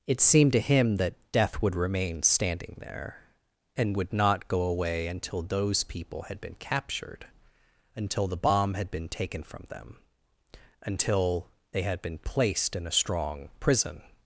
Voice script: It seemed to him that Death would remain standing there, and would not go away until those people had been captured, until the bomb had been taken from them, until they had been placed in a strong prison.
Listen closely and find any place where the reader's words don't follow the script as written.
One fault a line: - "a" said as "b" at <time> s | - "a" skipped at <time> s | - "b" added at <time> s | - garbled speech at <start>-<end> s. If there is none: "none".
none